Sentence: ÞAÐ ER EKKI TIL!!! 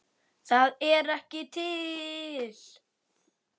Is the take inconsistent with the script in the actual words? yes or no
no